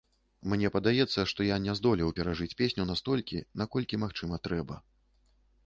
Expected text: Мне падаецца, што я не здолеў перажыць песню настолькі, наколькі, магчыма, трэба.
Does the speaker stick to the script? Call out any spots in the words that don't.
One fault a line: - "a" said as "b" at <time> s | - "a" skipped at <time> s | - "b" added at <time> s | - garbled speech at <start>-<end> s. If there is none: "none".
none